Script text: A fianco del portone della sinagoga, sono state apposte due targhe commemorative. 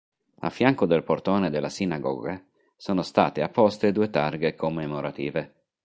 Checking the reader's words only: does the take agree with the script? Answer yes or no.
yes